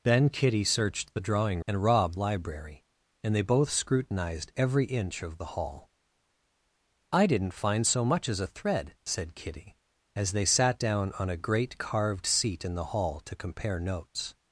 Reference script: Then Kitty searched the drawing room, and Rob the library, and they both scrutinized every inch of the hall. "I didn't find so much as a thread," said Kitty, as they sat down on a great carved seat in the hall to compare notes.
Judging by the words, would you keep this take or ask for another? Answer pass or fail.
fail